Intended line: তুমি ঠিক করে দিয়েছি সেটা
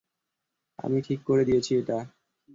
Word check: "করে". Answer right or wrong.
right